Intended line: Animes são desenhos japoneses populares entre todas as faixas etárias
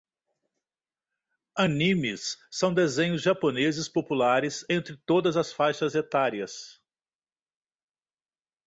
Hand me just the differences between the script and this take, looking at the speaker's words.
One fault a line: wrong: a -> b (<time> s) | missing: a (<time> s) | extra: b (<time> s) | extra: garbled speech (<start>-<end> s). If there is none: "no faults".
no faults